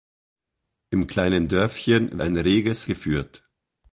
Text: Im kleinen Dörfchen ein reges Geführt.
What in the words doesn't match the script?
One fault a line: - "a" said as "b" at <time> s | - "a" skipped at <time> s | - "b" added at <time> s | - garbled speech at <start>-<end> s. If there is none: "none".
none